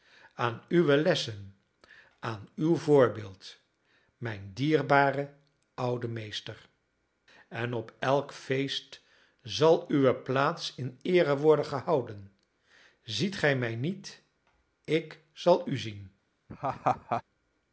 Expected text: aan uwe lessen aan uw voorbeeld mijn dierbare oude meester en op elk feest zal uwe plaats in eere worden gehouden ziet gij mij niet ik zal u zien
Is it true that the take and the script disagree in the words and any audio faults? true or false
true